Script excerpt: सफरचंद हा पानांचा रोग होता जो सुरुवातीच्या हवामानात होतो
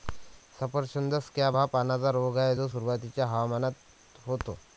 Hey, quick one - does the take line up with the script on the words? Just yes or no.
no